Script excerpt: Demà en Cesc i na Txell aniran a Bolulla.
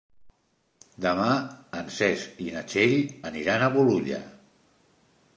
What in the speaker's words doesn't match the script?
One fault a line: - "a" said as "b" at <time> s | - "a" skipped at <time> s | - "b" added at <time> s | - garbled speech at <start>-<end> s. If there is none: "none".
none